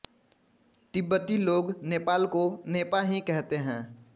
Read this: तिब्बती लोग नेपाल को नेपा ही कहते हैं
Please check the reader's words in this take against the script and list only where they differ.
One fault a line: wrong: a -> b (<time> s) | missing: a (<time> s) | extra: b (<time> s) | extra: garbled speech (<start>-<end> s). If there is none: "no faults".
no faults